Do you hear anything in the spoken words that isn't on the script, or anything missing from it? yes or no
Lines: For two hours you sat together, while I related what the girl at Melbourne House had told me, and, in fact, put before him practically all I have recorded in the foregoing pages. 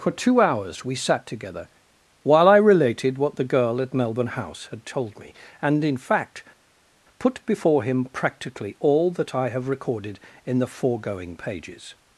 yes